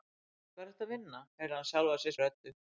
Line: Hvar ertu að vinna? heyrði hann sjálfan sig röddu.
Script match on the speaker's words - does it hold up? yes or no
yes